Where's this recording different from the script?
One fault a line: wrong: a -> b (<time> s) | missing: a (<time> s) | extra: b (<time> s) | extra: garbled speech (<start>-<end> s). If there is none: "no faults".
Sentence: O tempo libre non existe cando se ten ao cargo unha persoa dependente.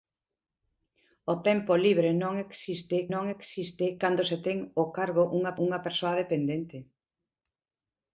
extra: non existe (3.1 s)
extra: unha (5.7 s)